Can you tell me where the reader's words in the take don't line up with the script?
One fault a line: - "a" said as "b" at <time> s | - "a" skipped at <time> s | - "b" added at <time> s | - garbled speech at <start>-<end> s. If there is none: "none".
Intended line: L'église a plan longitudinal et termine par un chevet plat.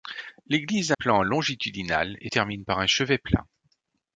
none